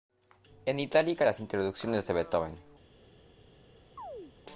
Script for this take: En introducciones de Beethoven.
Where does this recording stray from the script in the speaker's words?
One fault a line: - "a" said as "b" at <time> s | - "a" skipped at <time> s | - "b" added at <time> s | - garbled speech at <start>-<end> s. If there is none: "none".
- "itálica las" added at 0.8 s